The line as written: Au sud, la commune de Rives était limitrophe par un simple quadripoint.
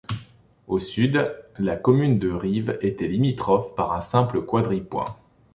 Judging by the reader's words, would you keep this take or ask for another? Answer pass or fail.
pass